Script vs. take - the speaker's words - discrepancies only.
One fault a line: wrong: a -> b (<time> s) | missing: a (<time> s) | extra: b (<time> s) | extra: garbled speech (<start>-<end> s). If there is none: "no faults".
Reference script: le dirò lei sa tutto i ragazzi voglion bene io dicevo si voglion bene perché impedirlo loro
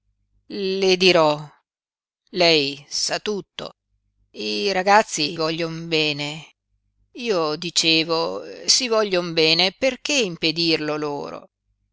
no faults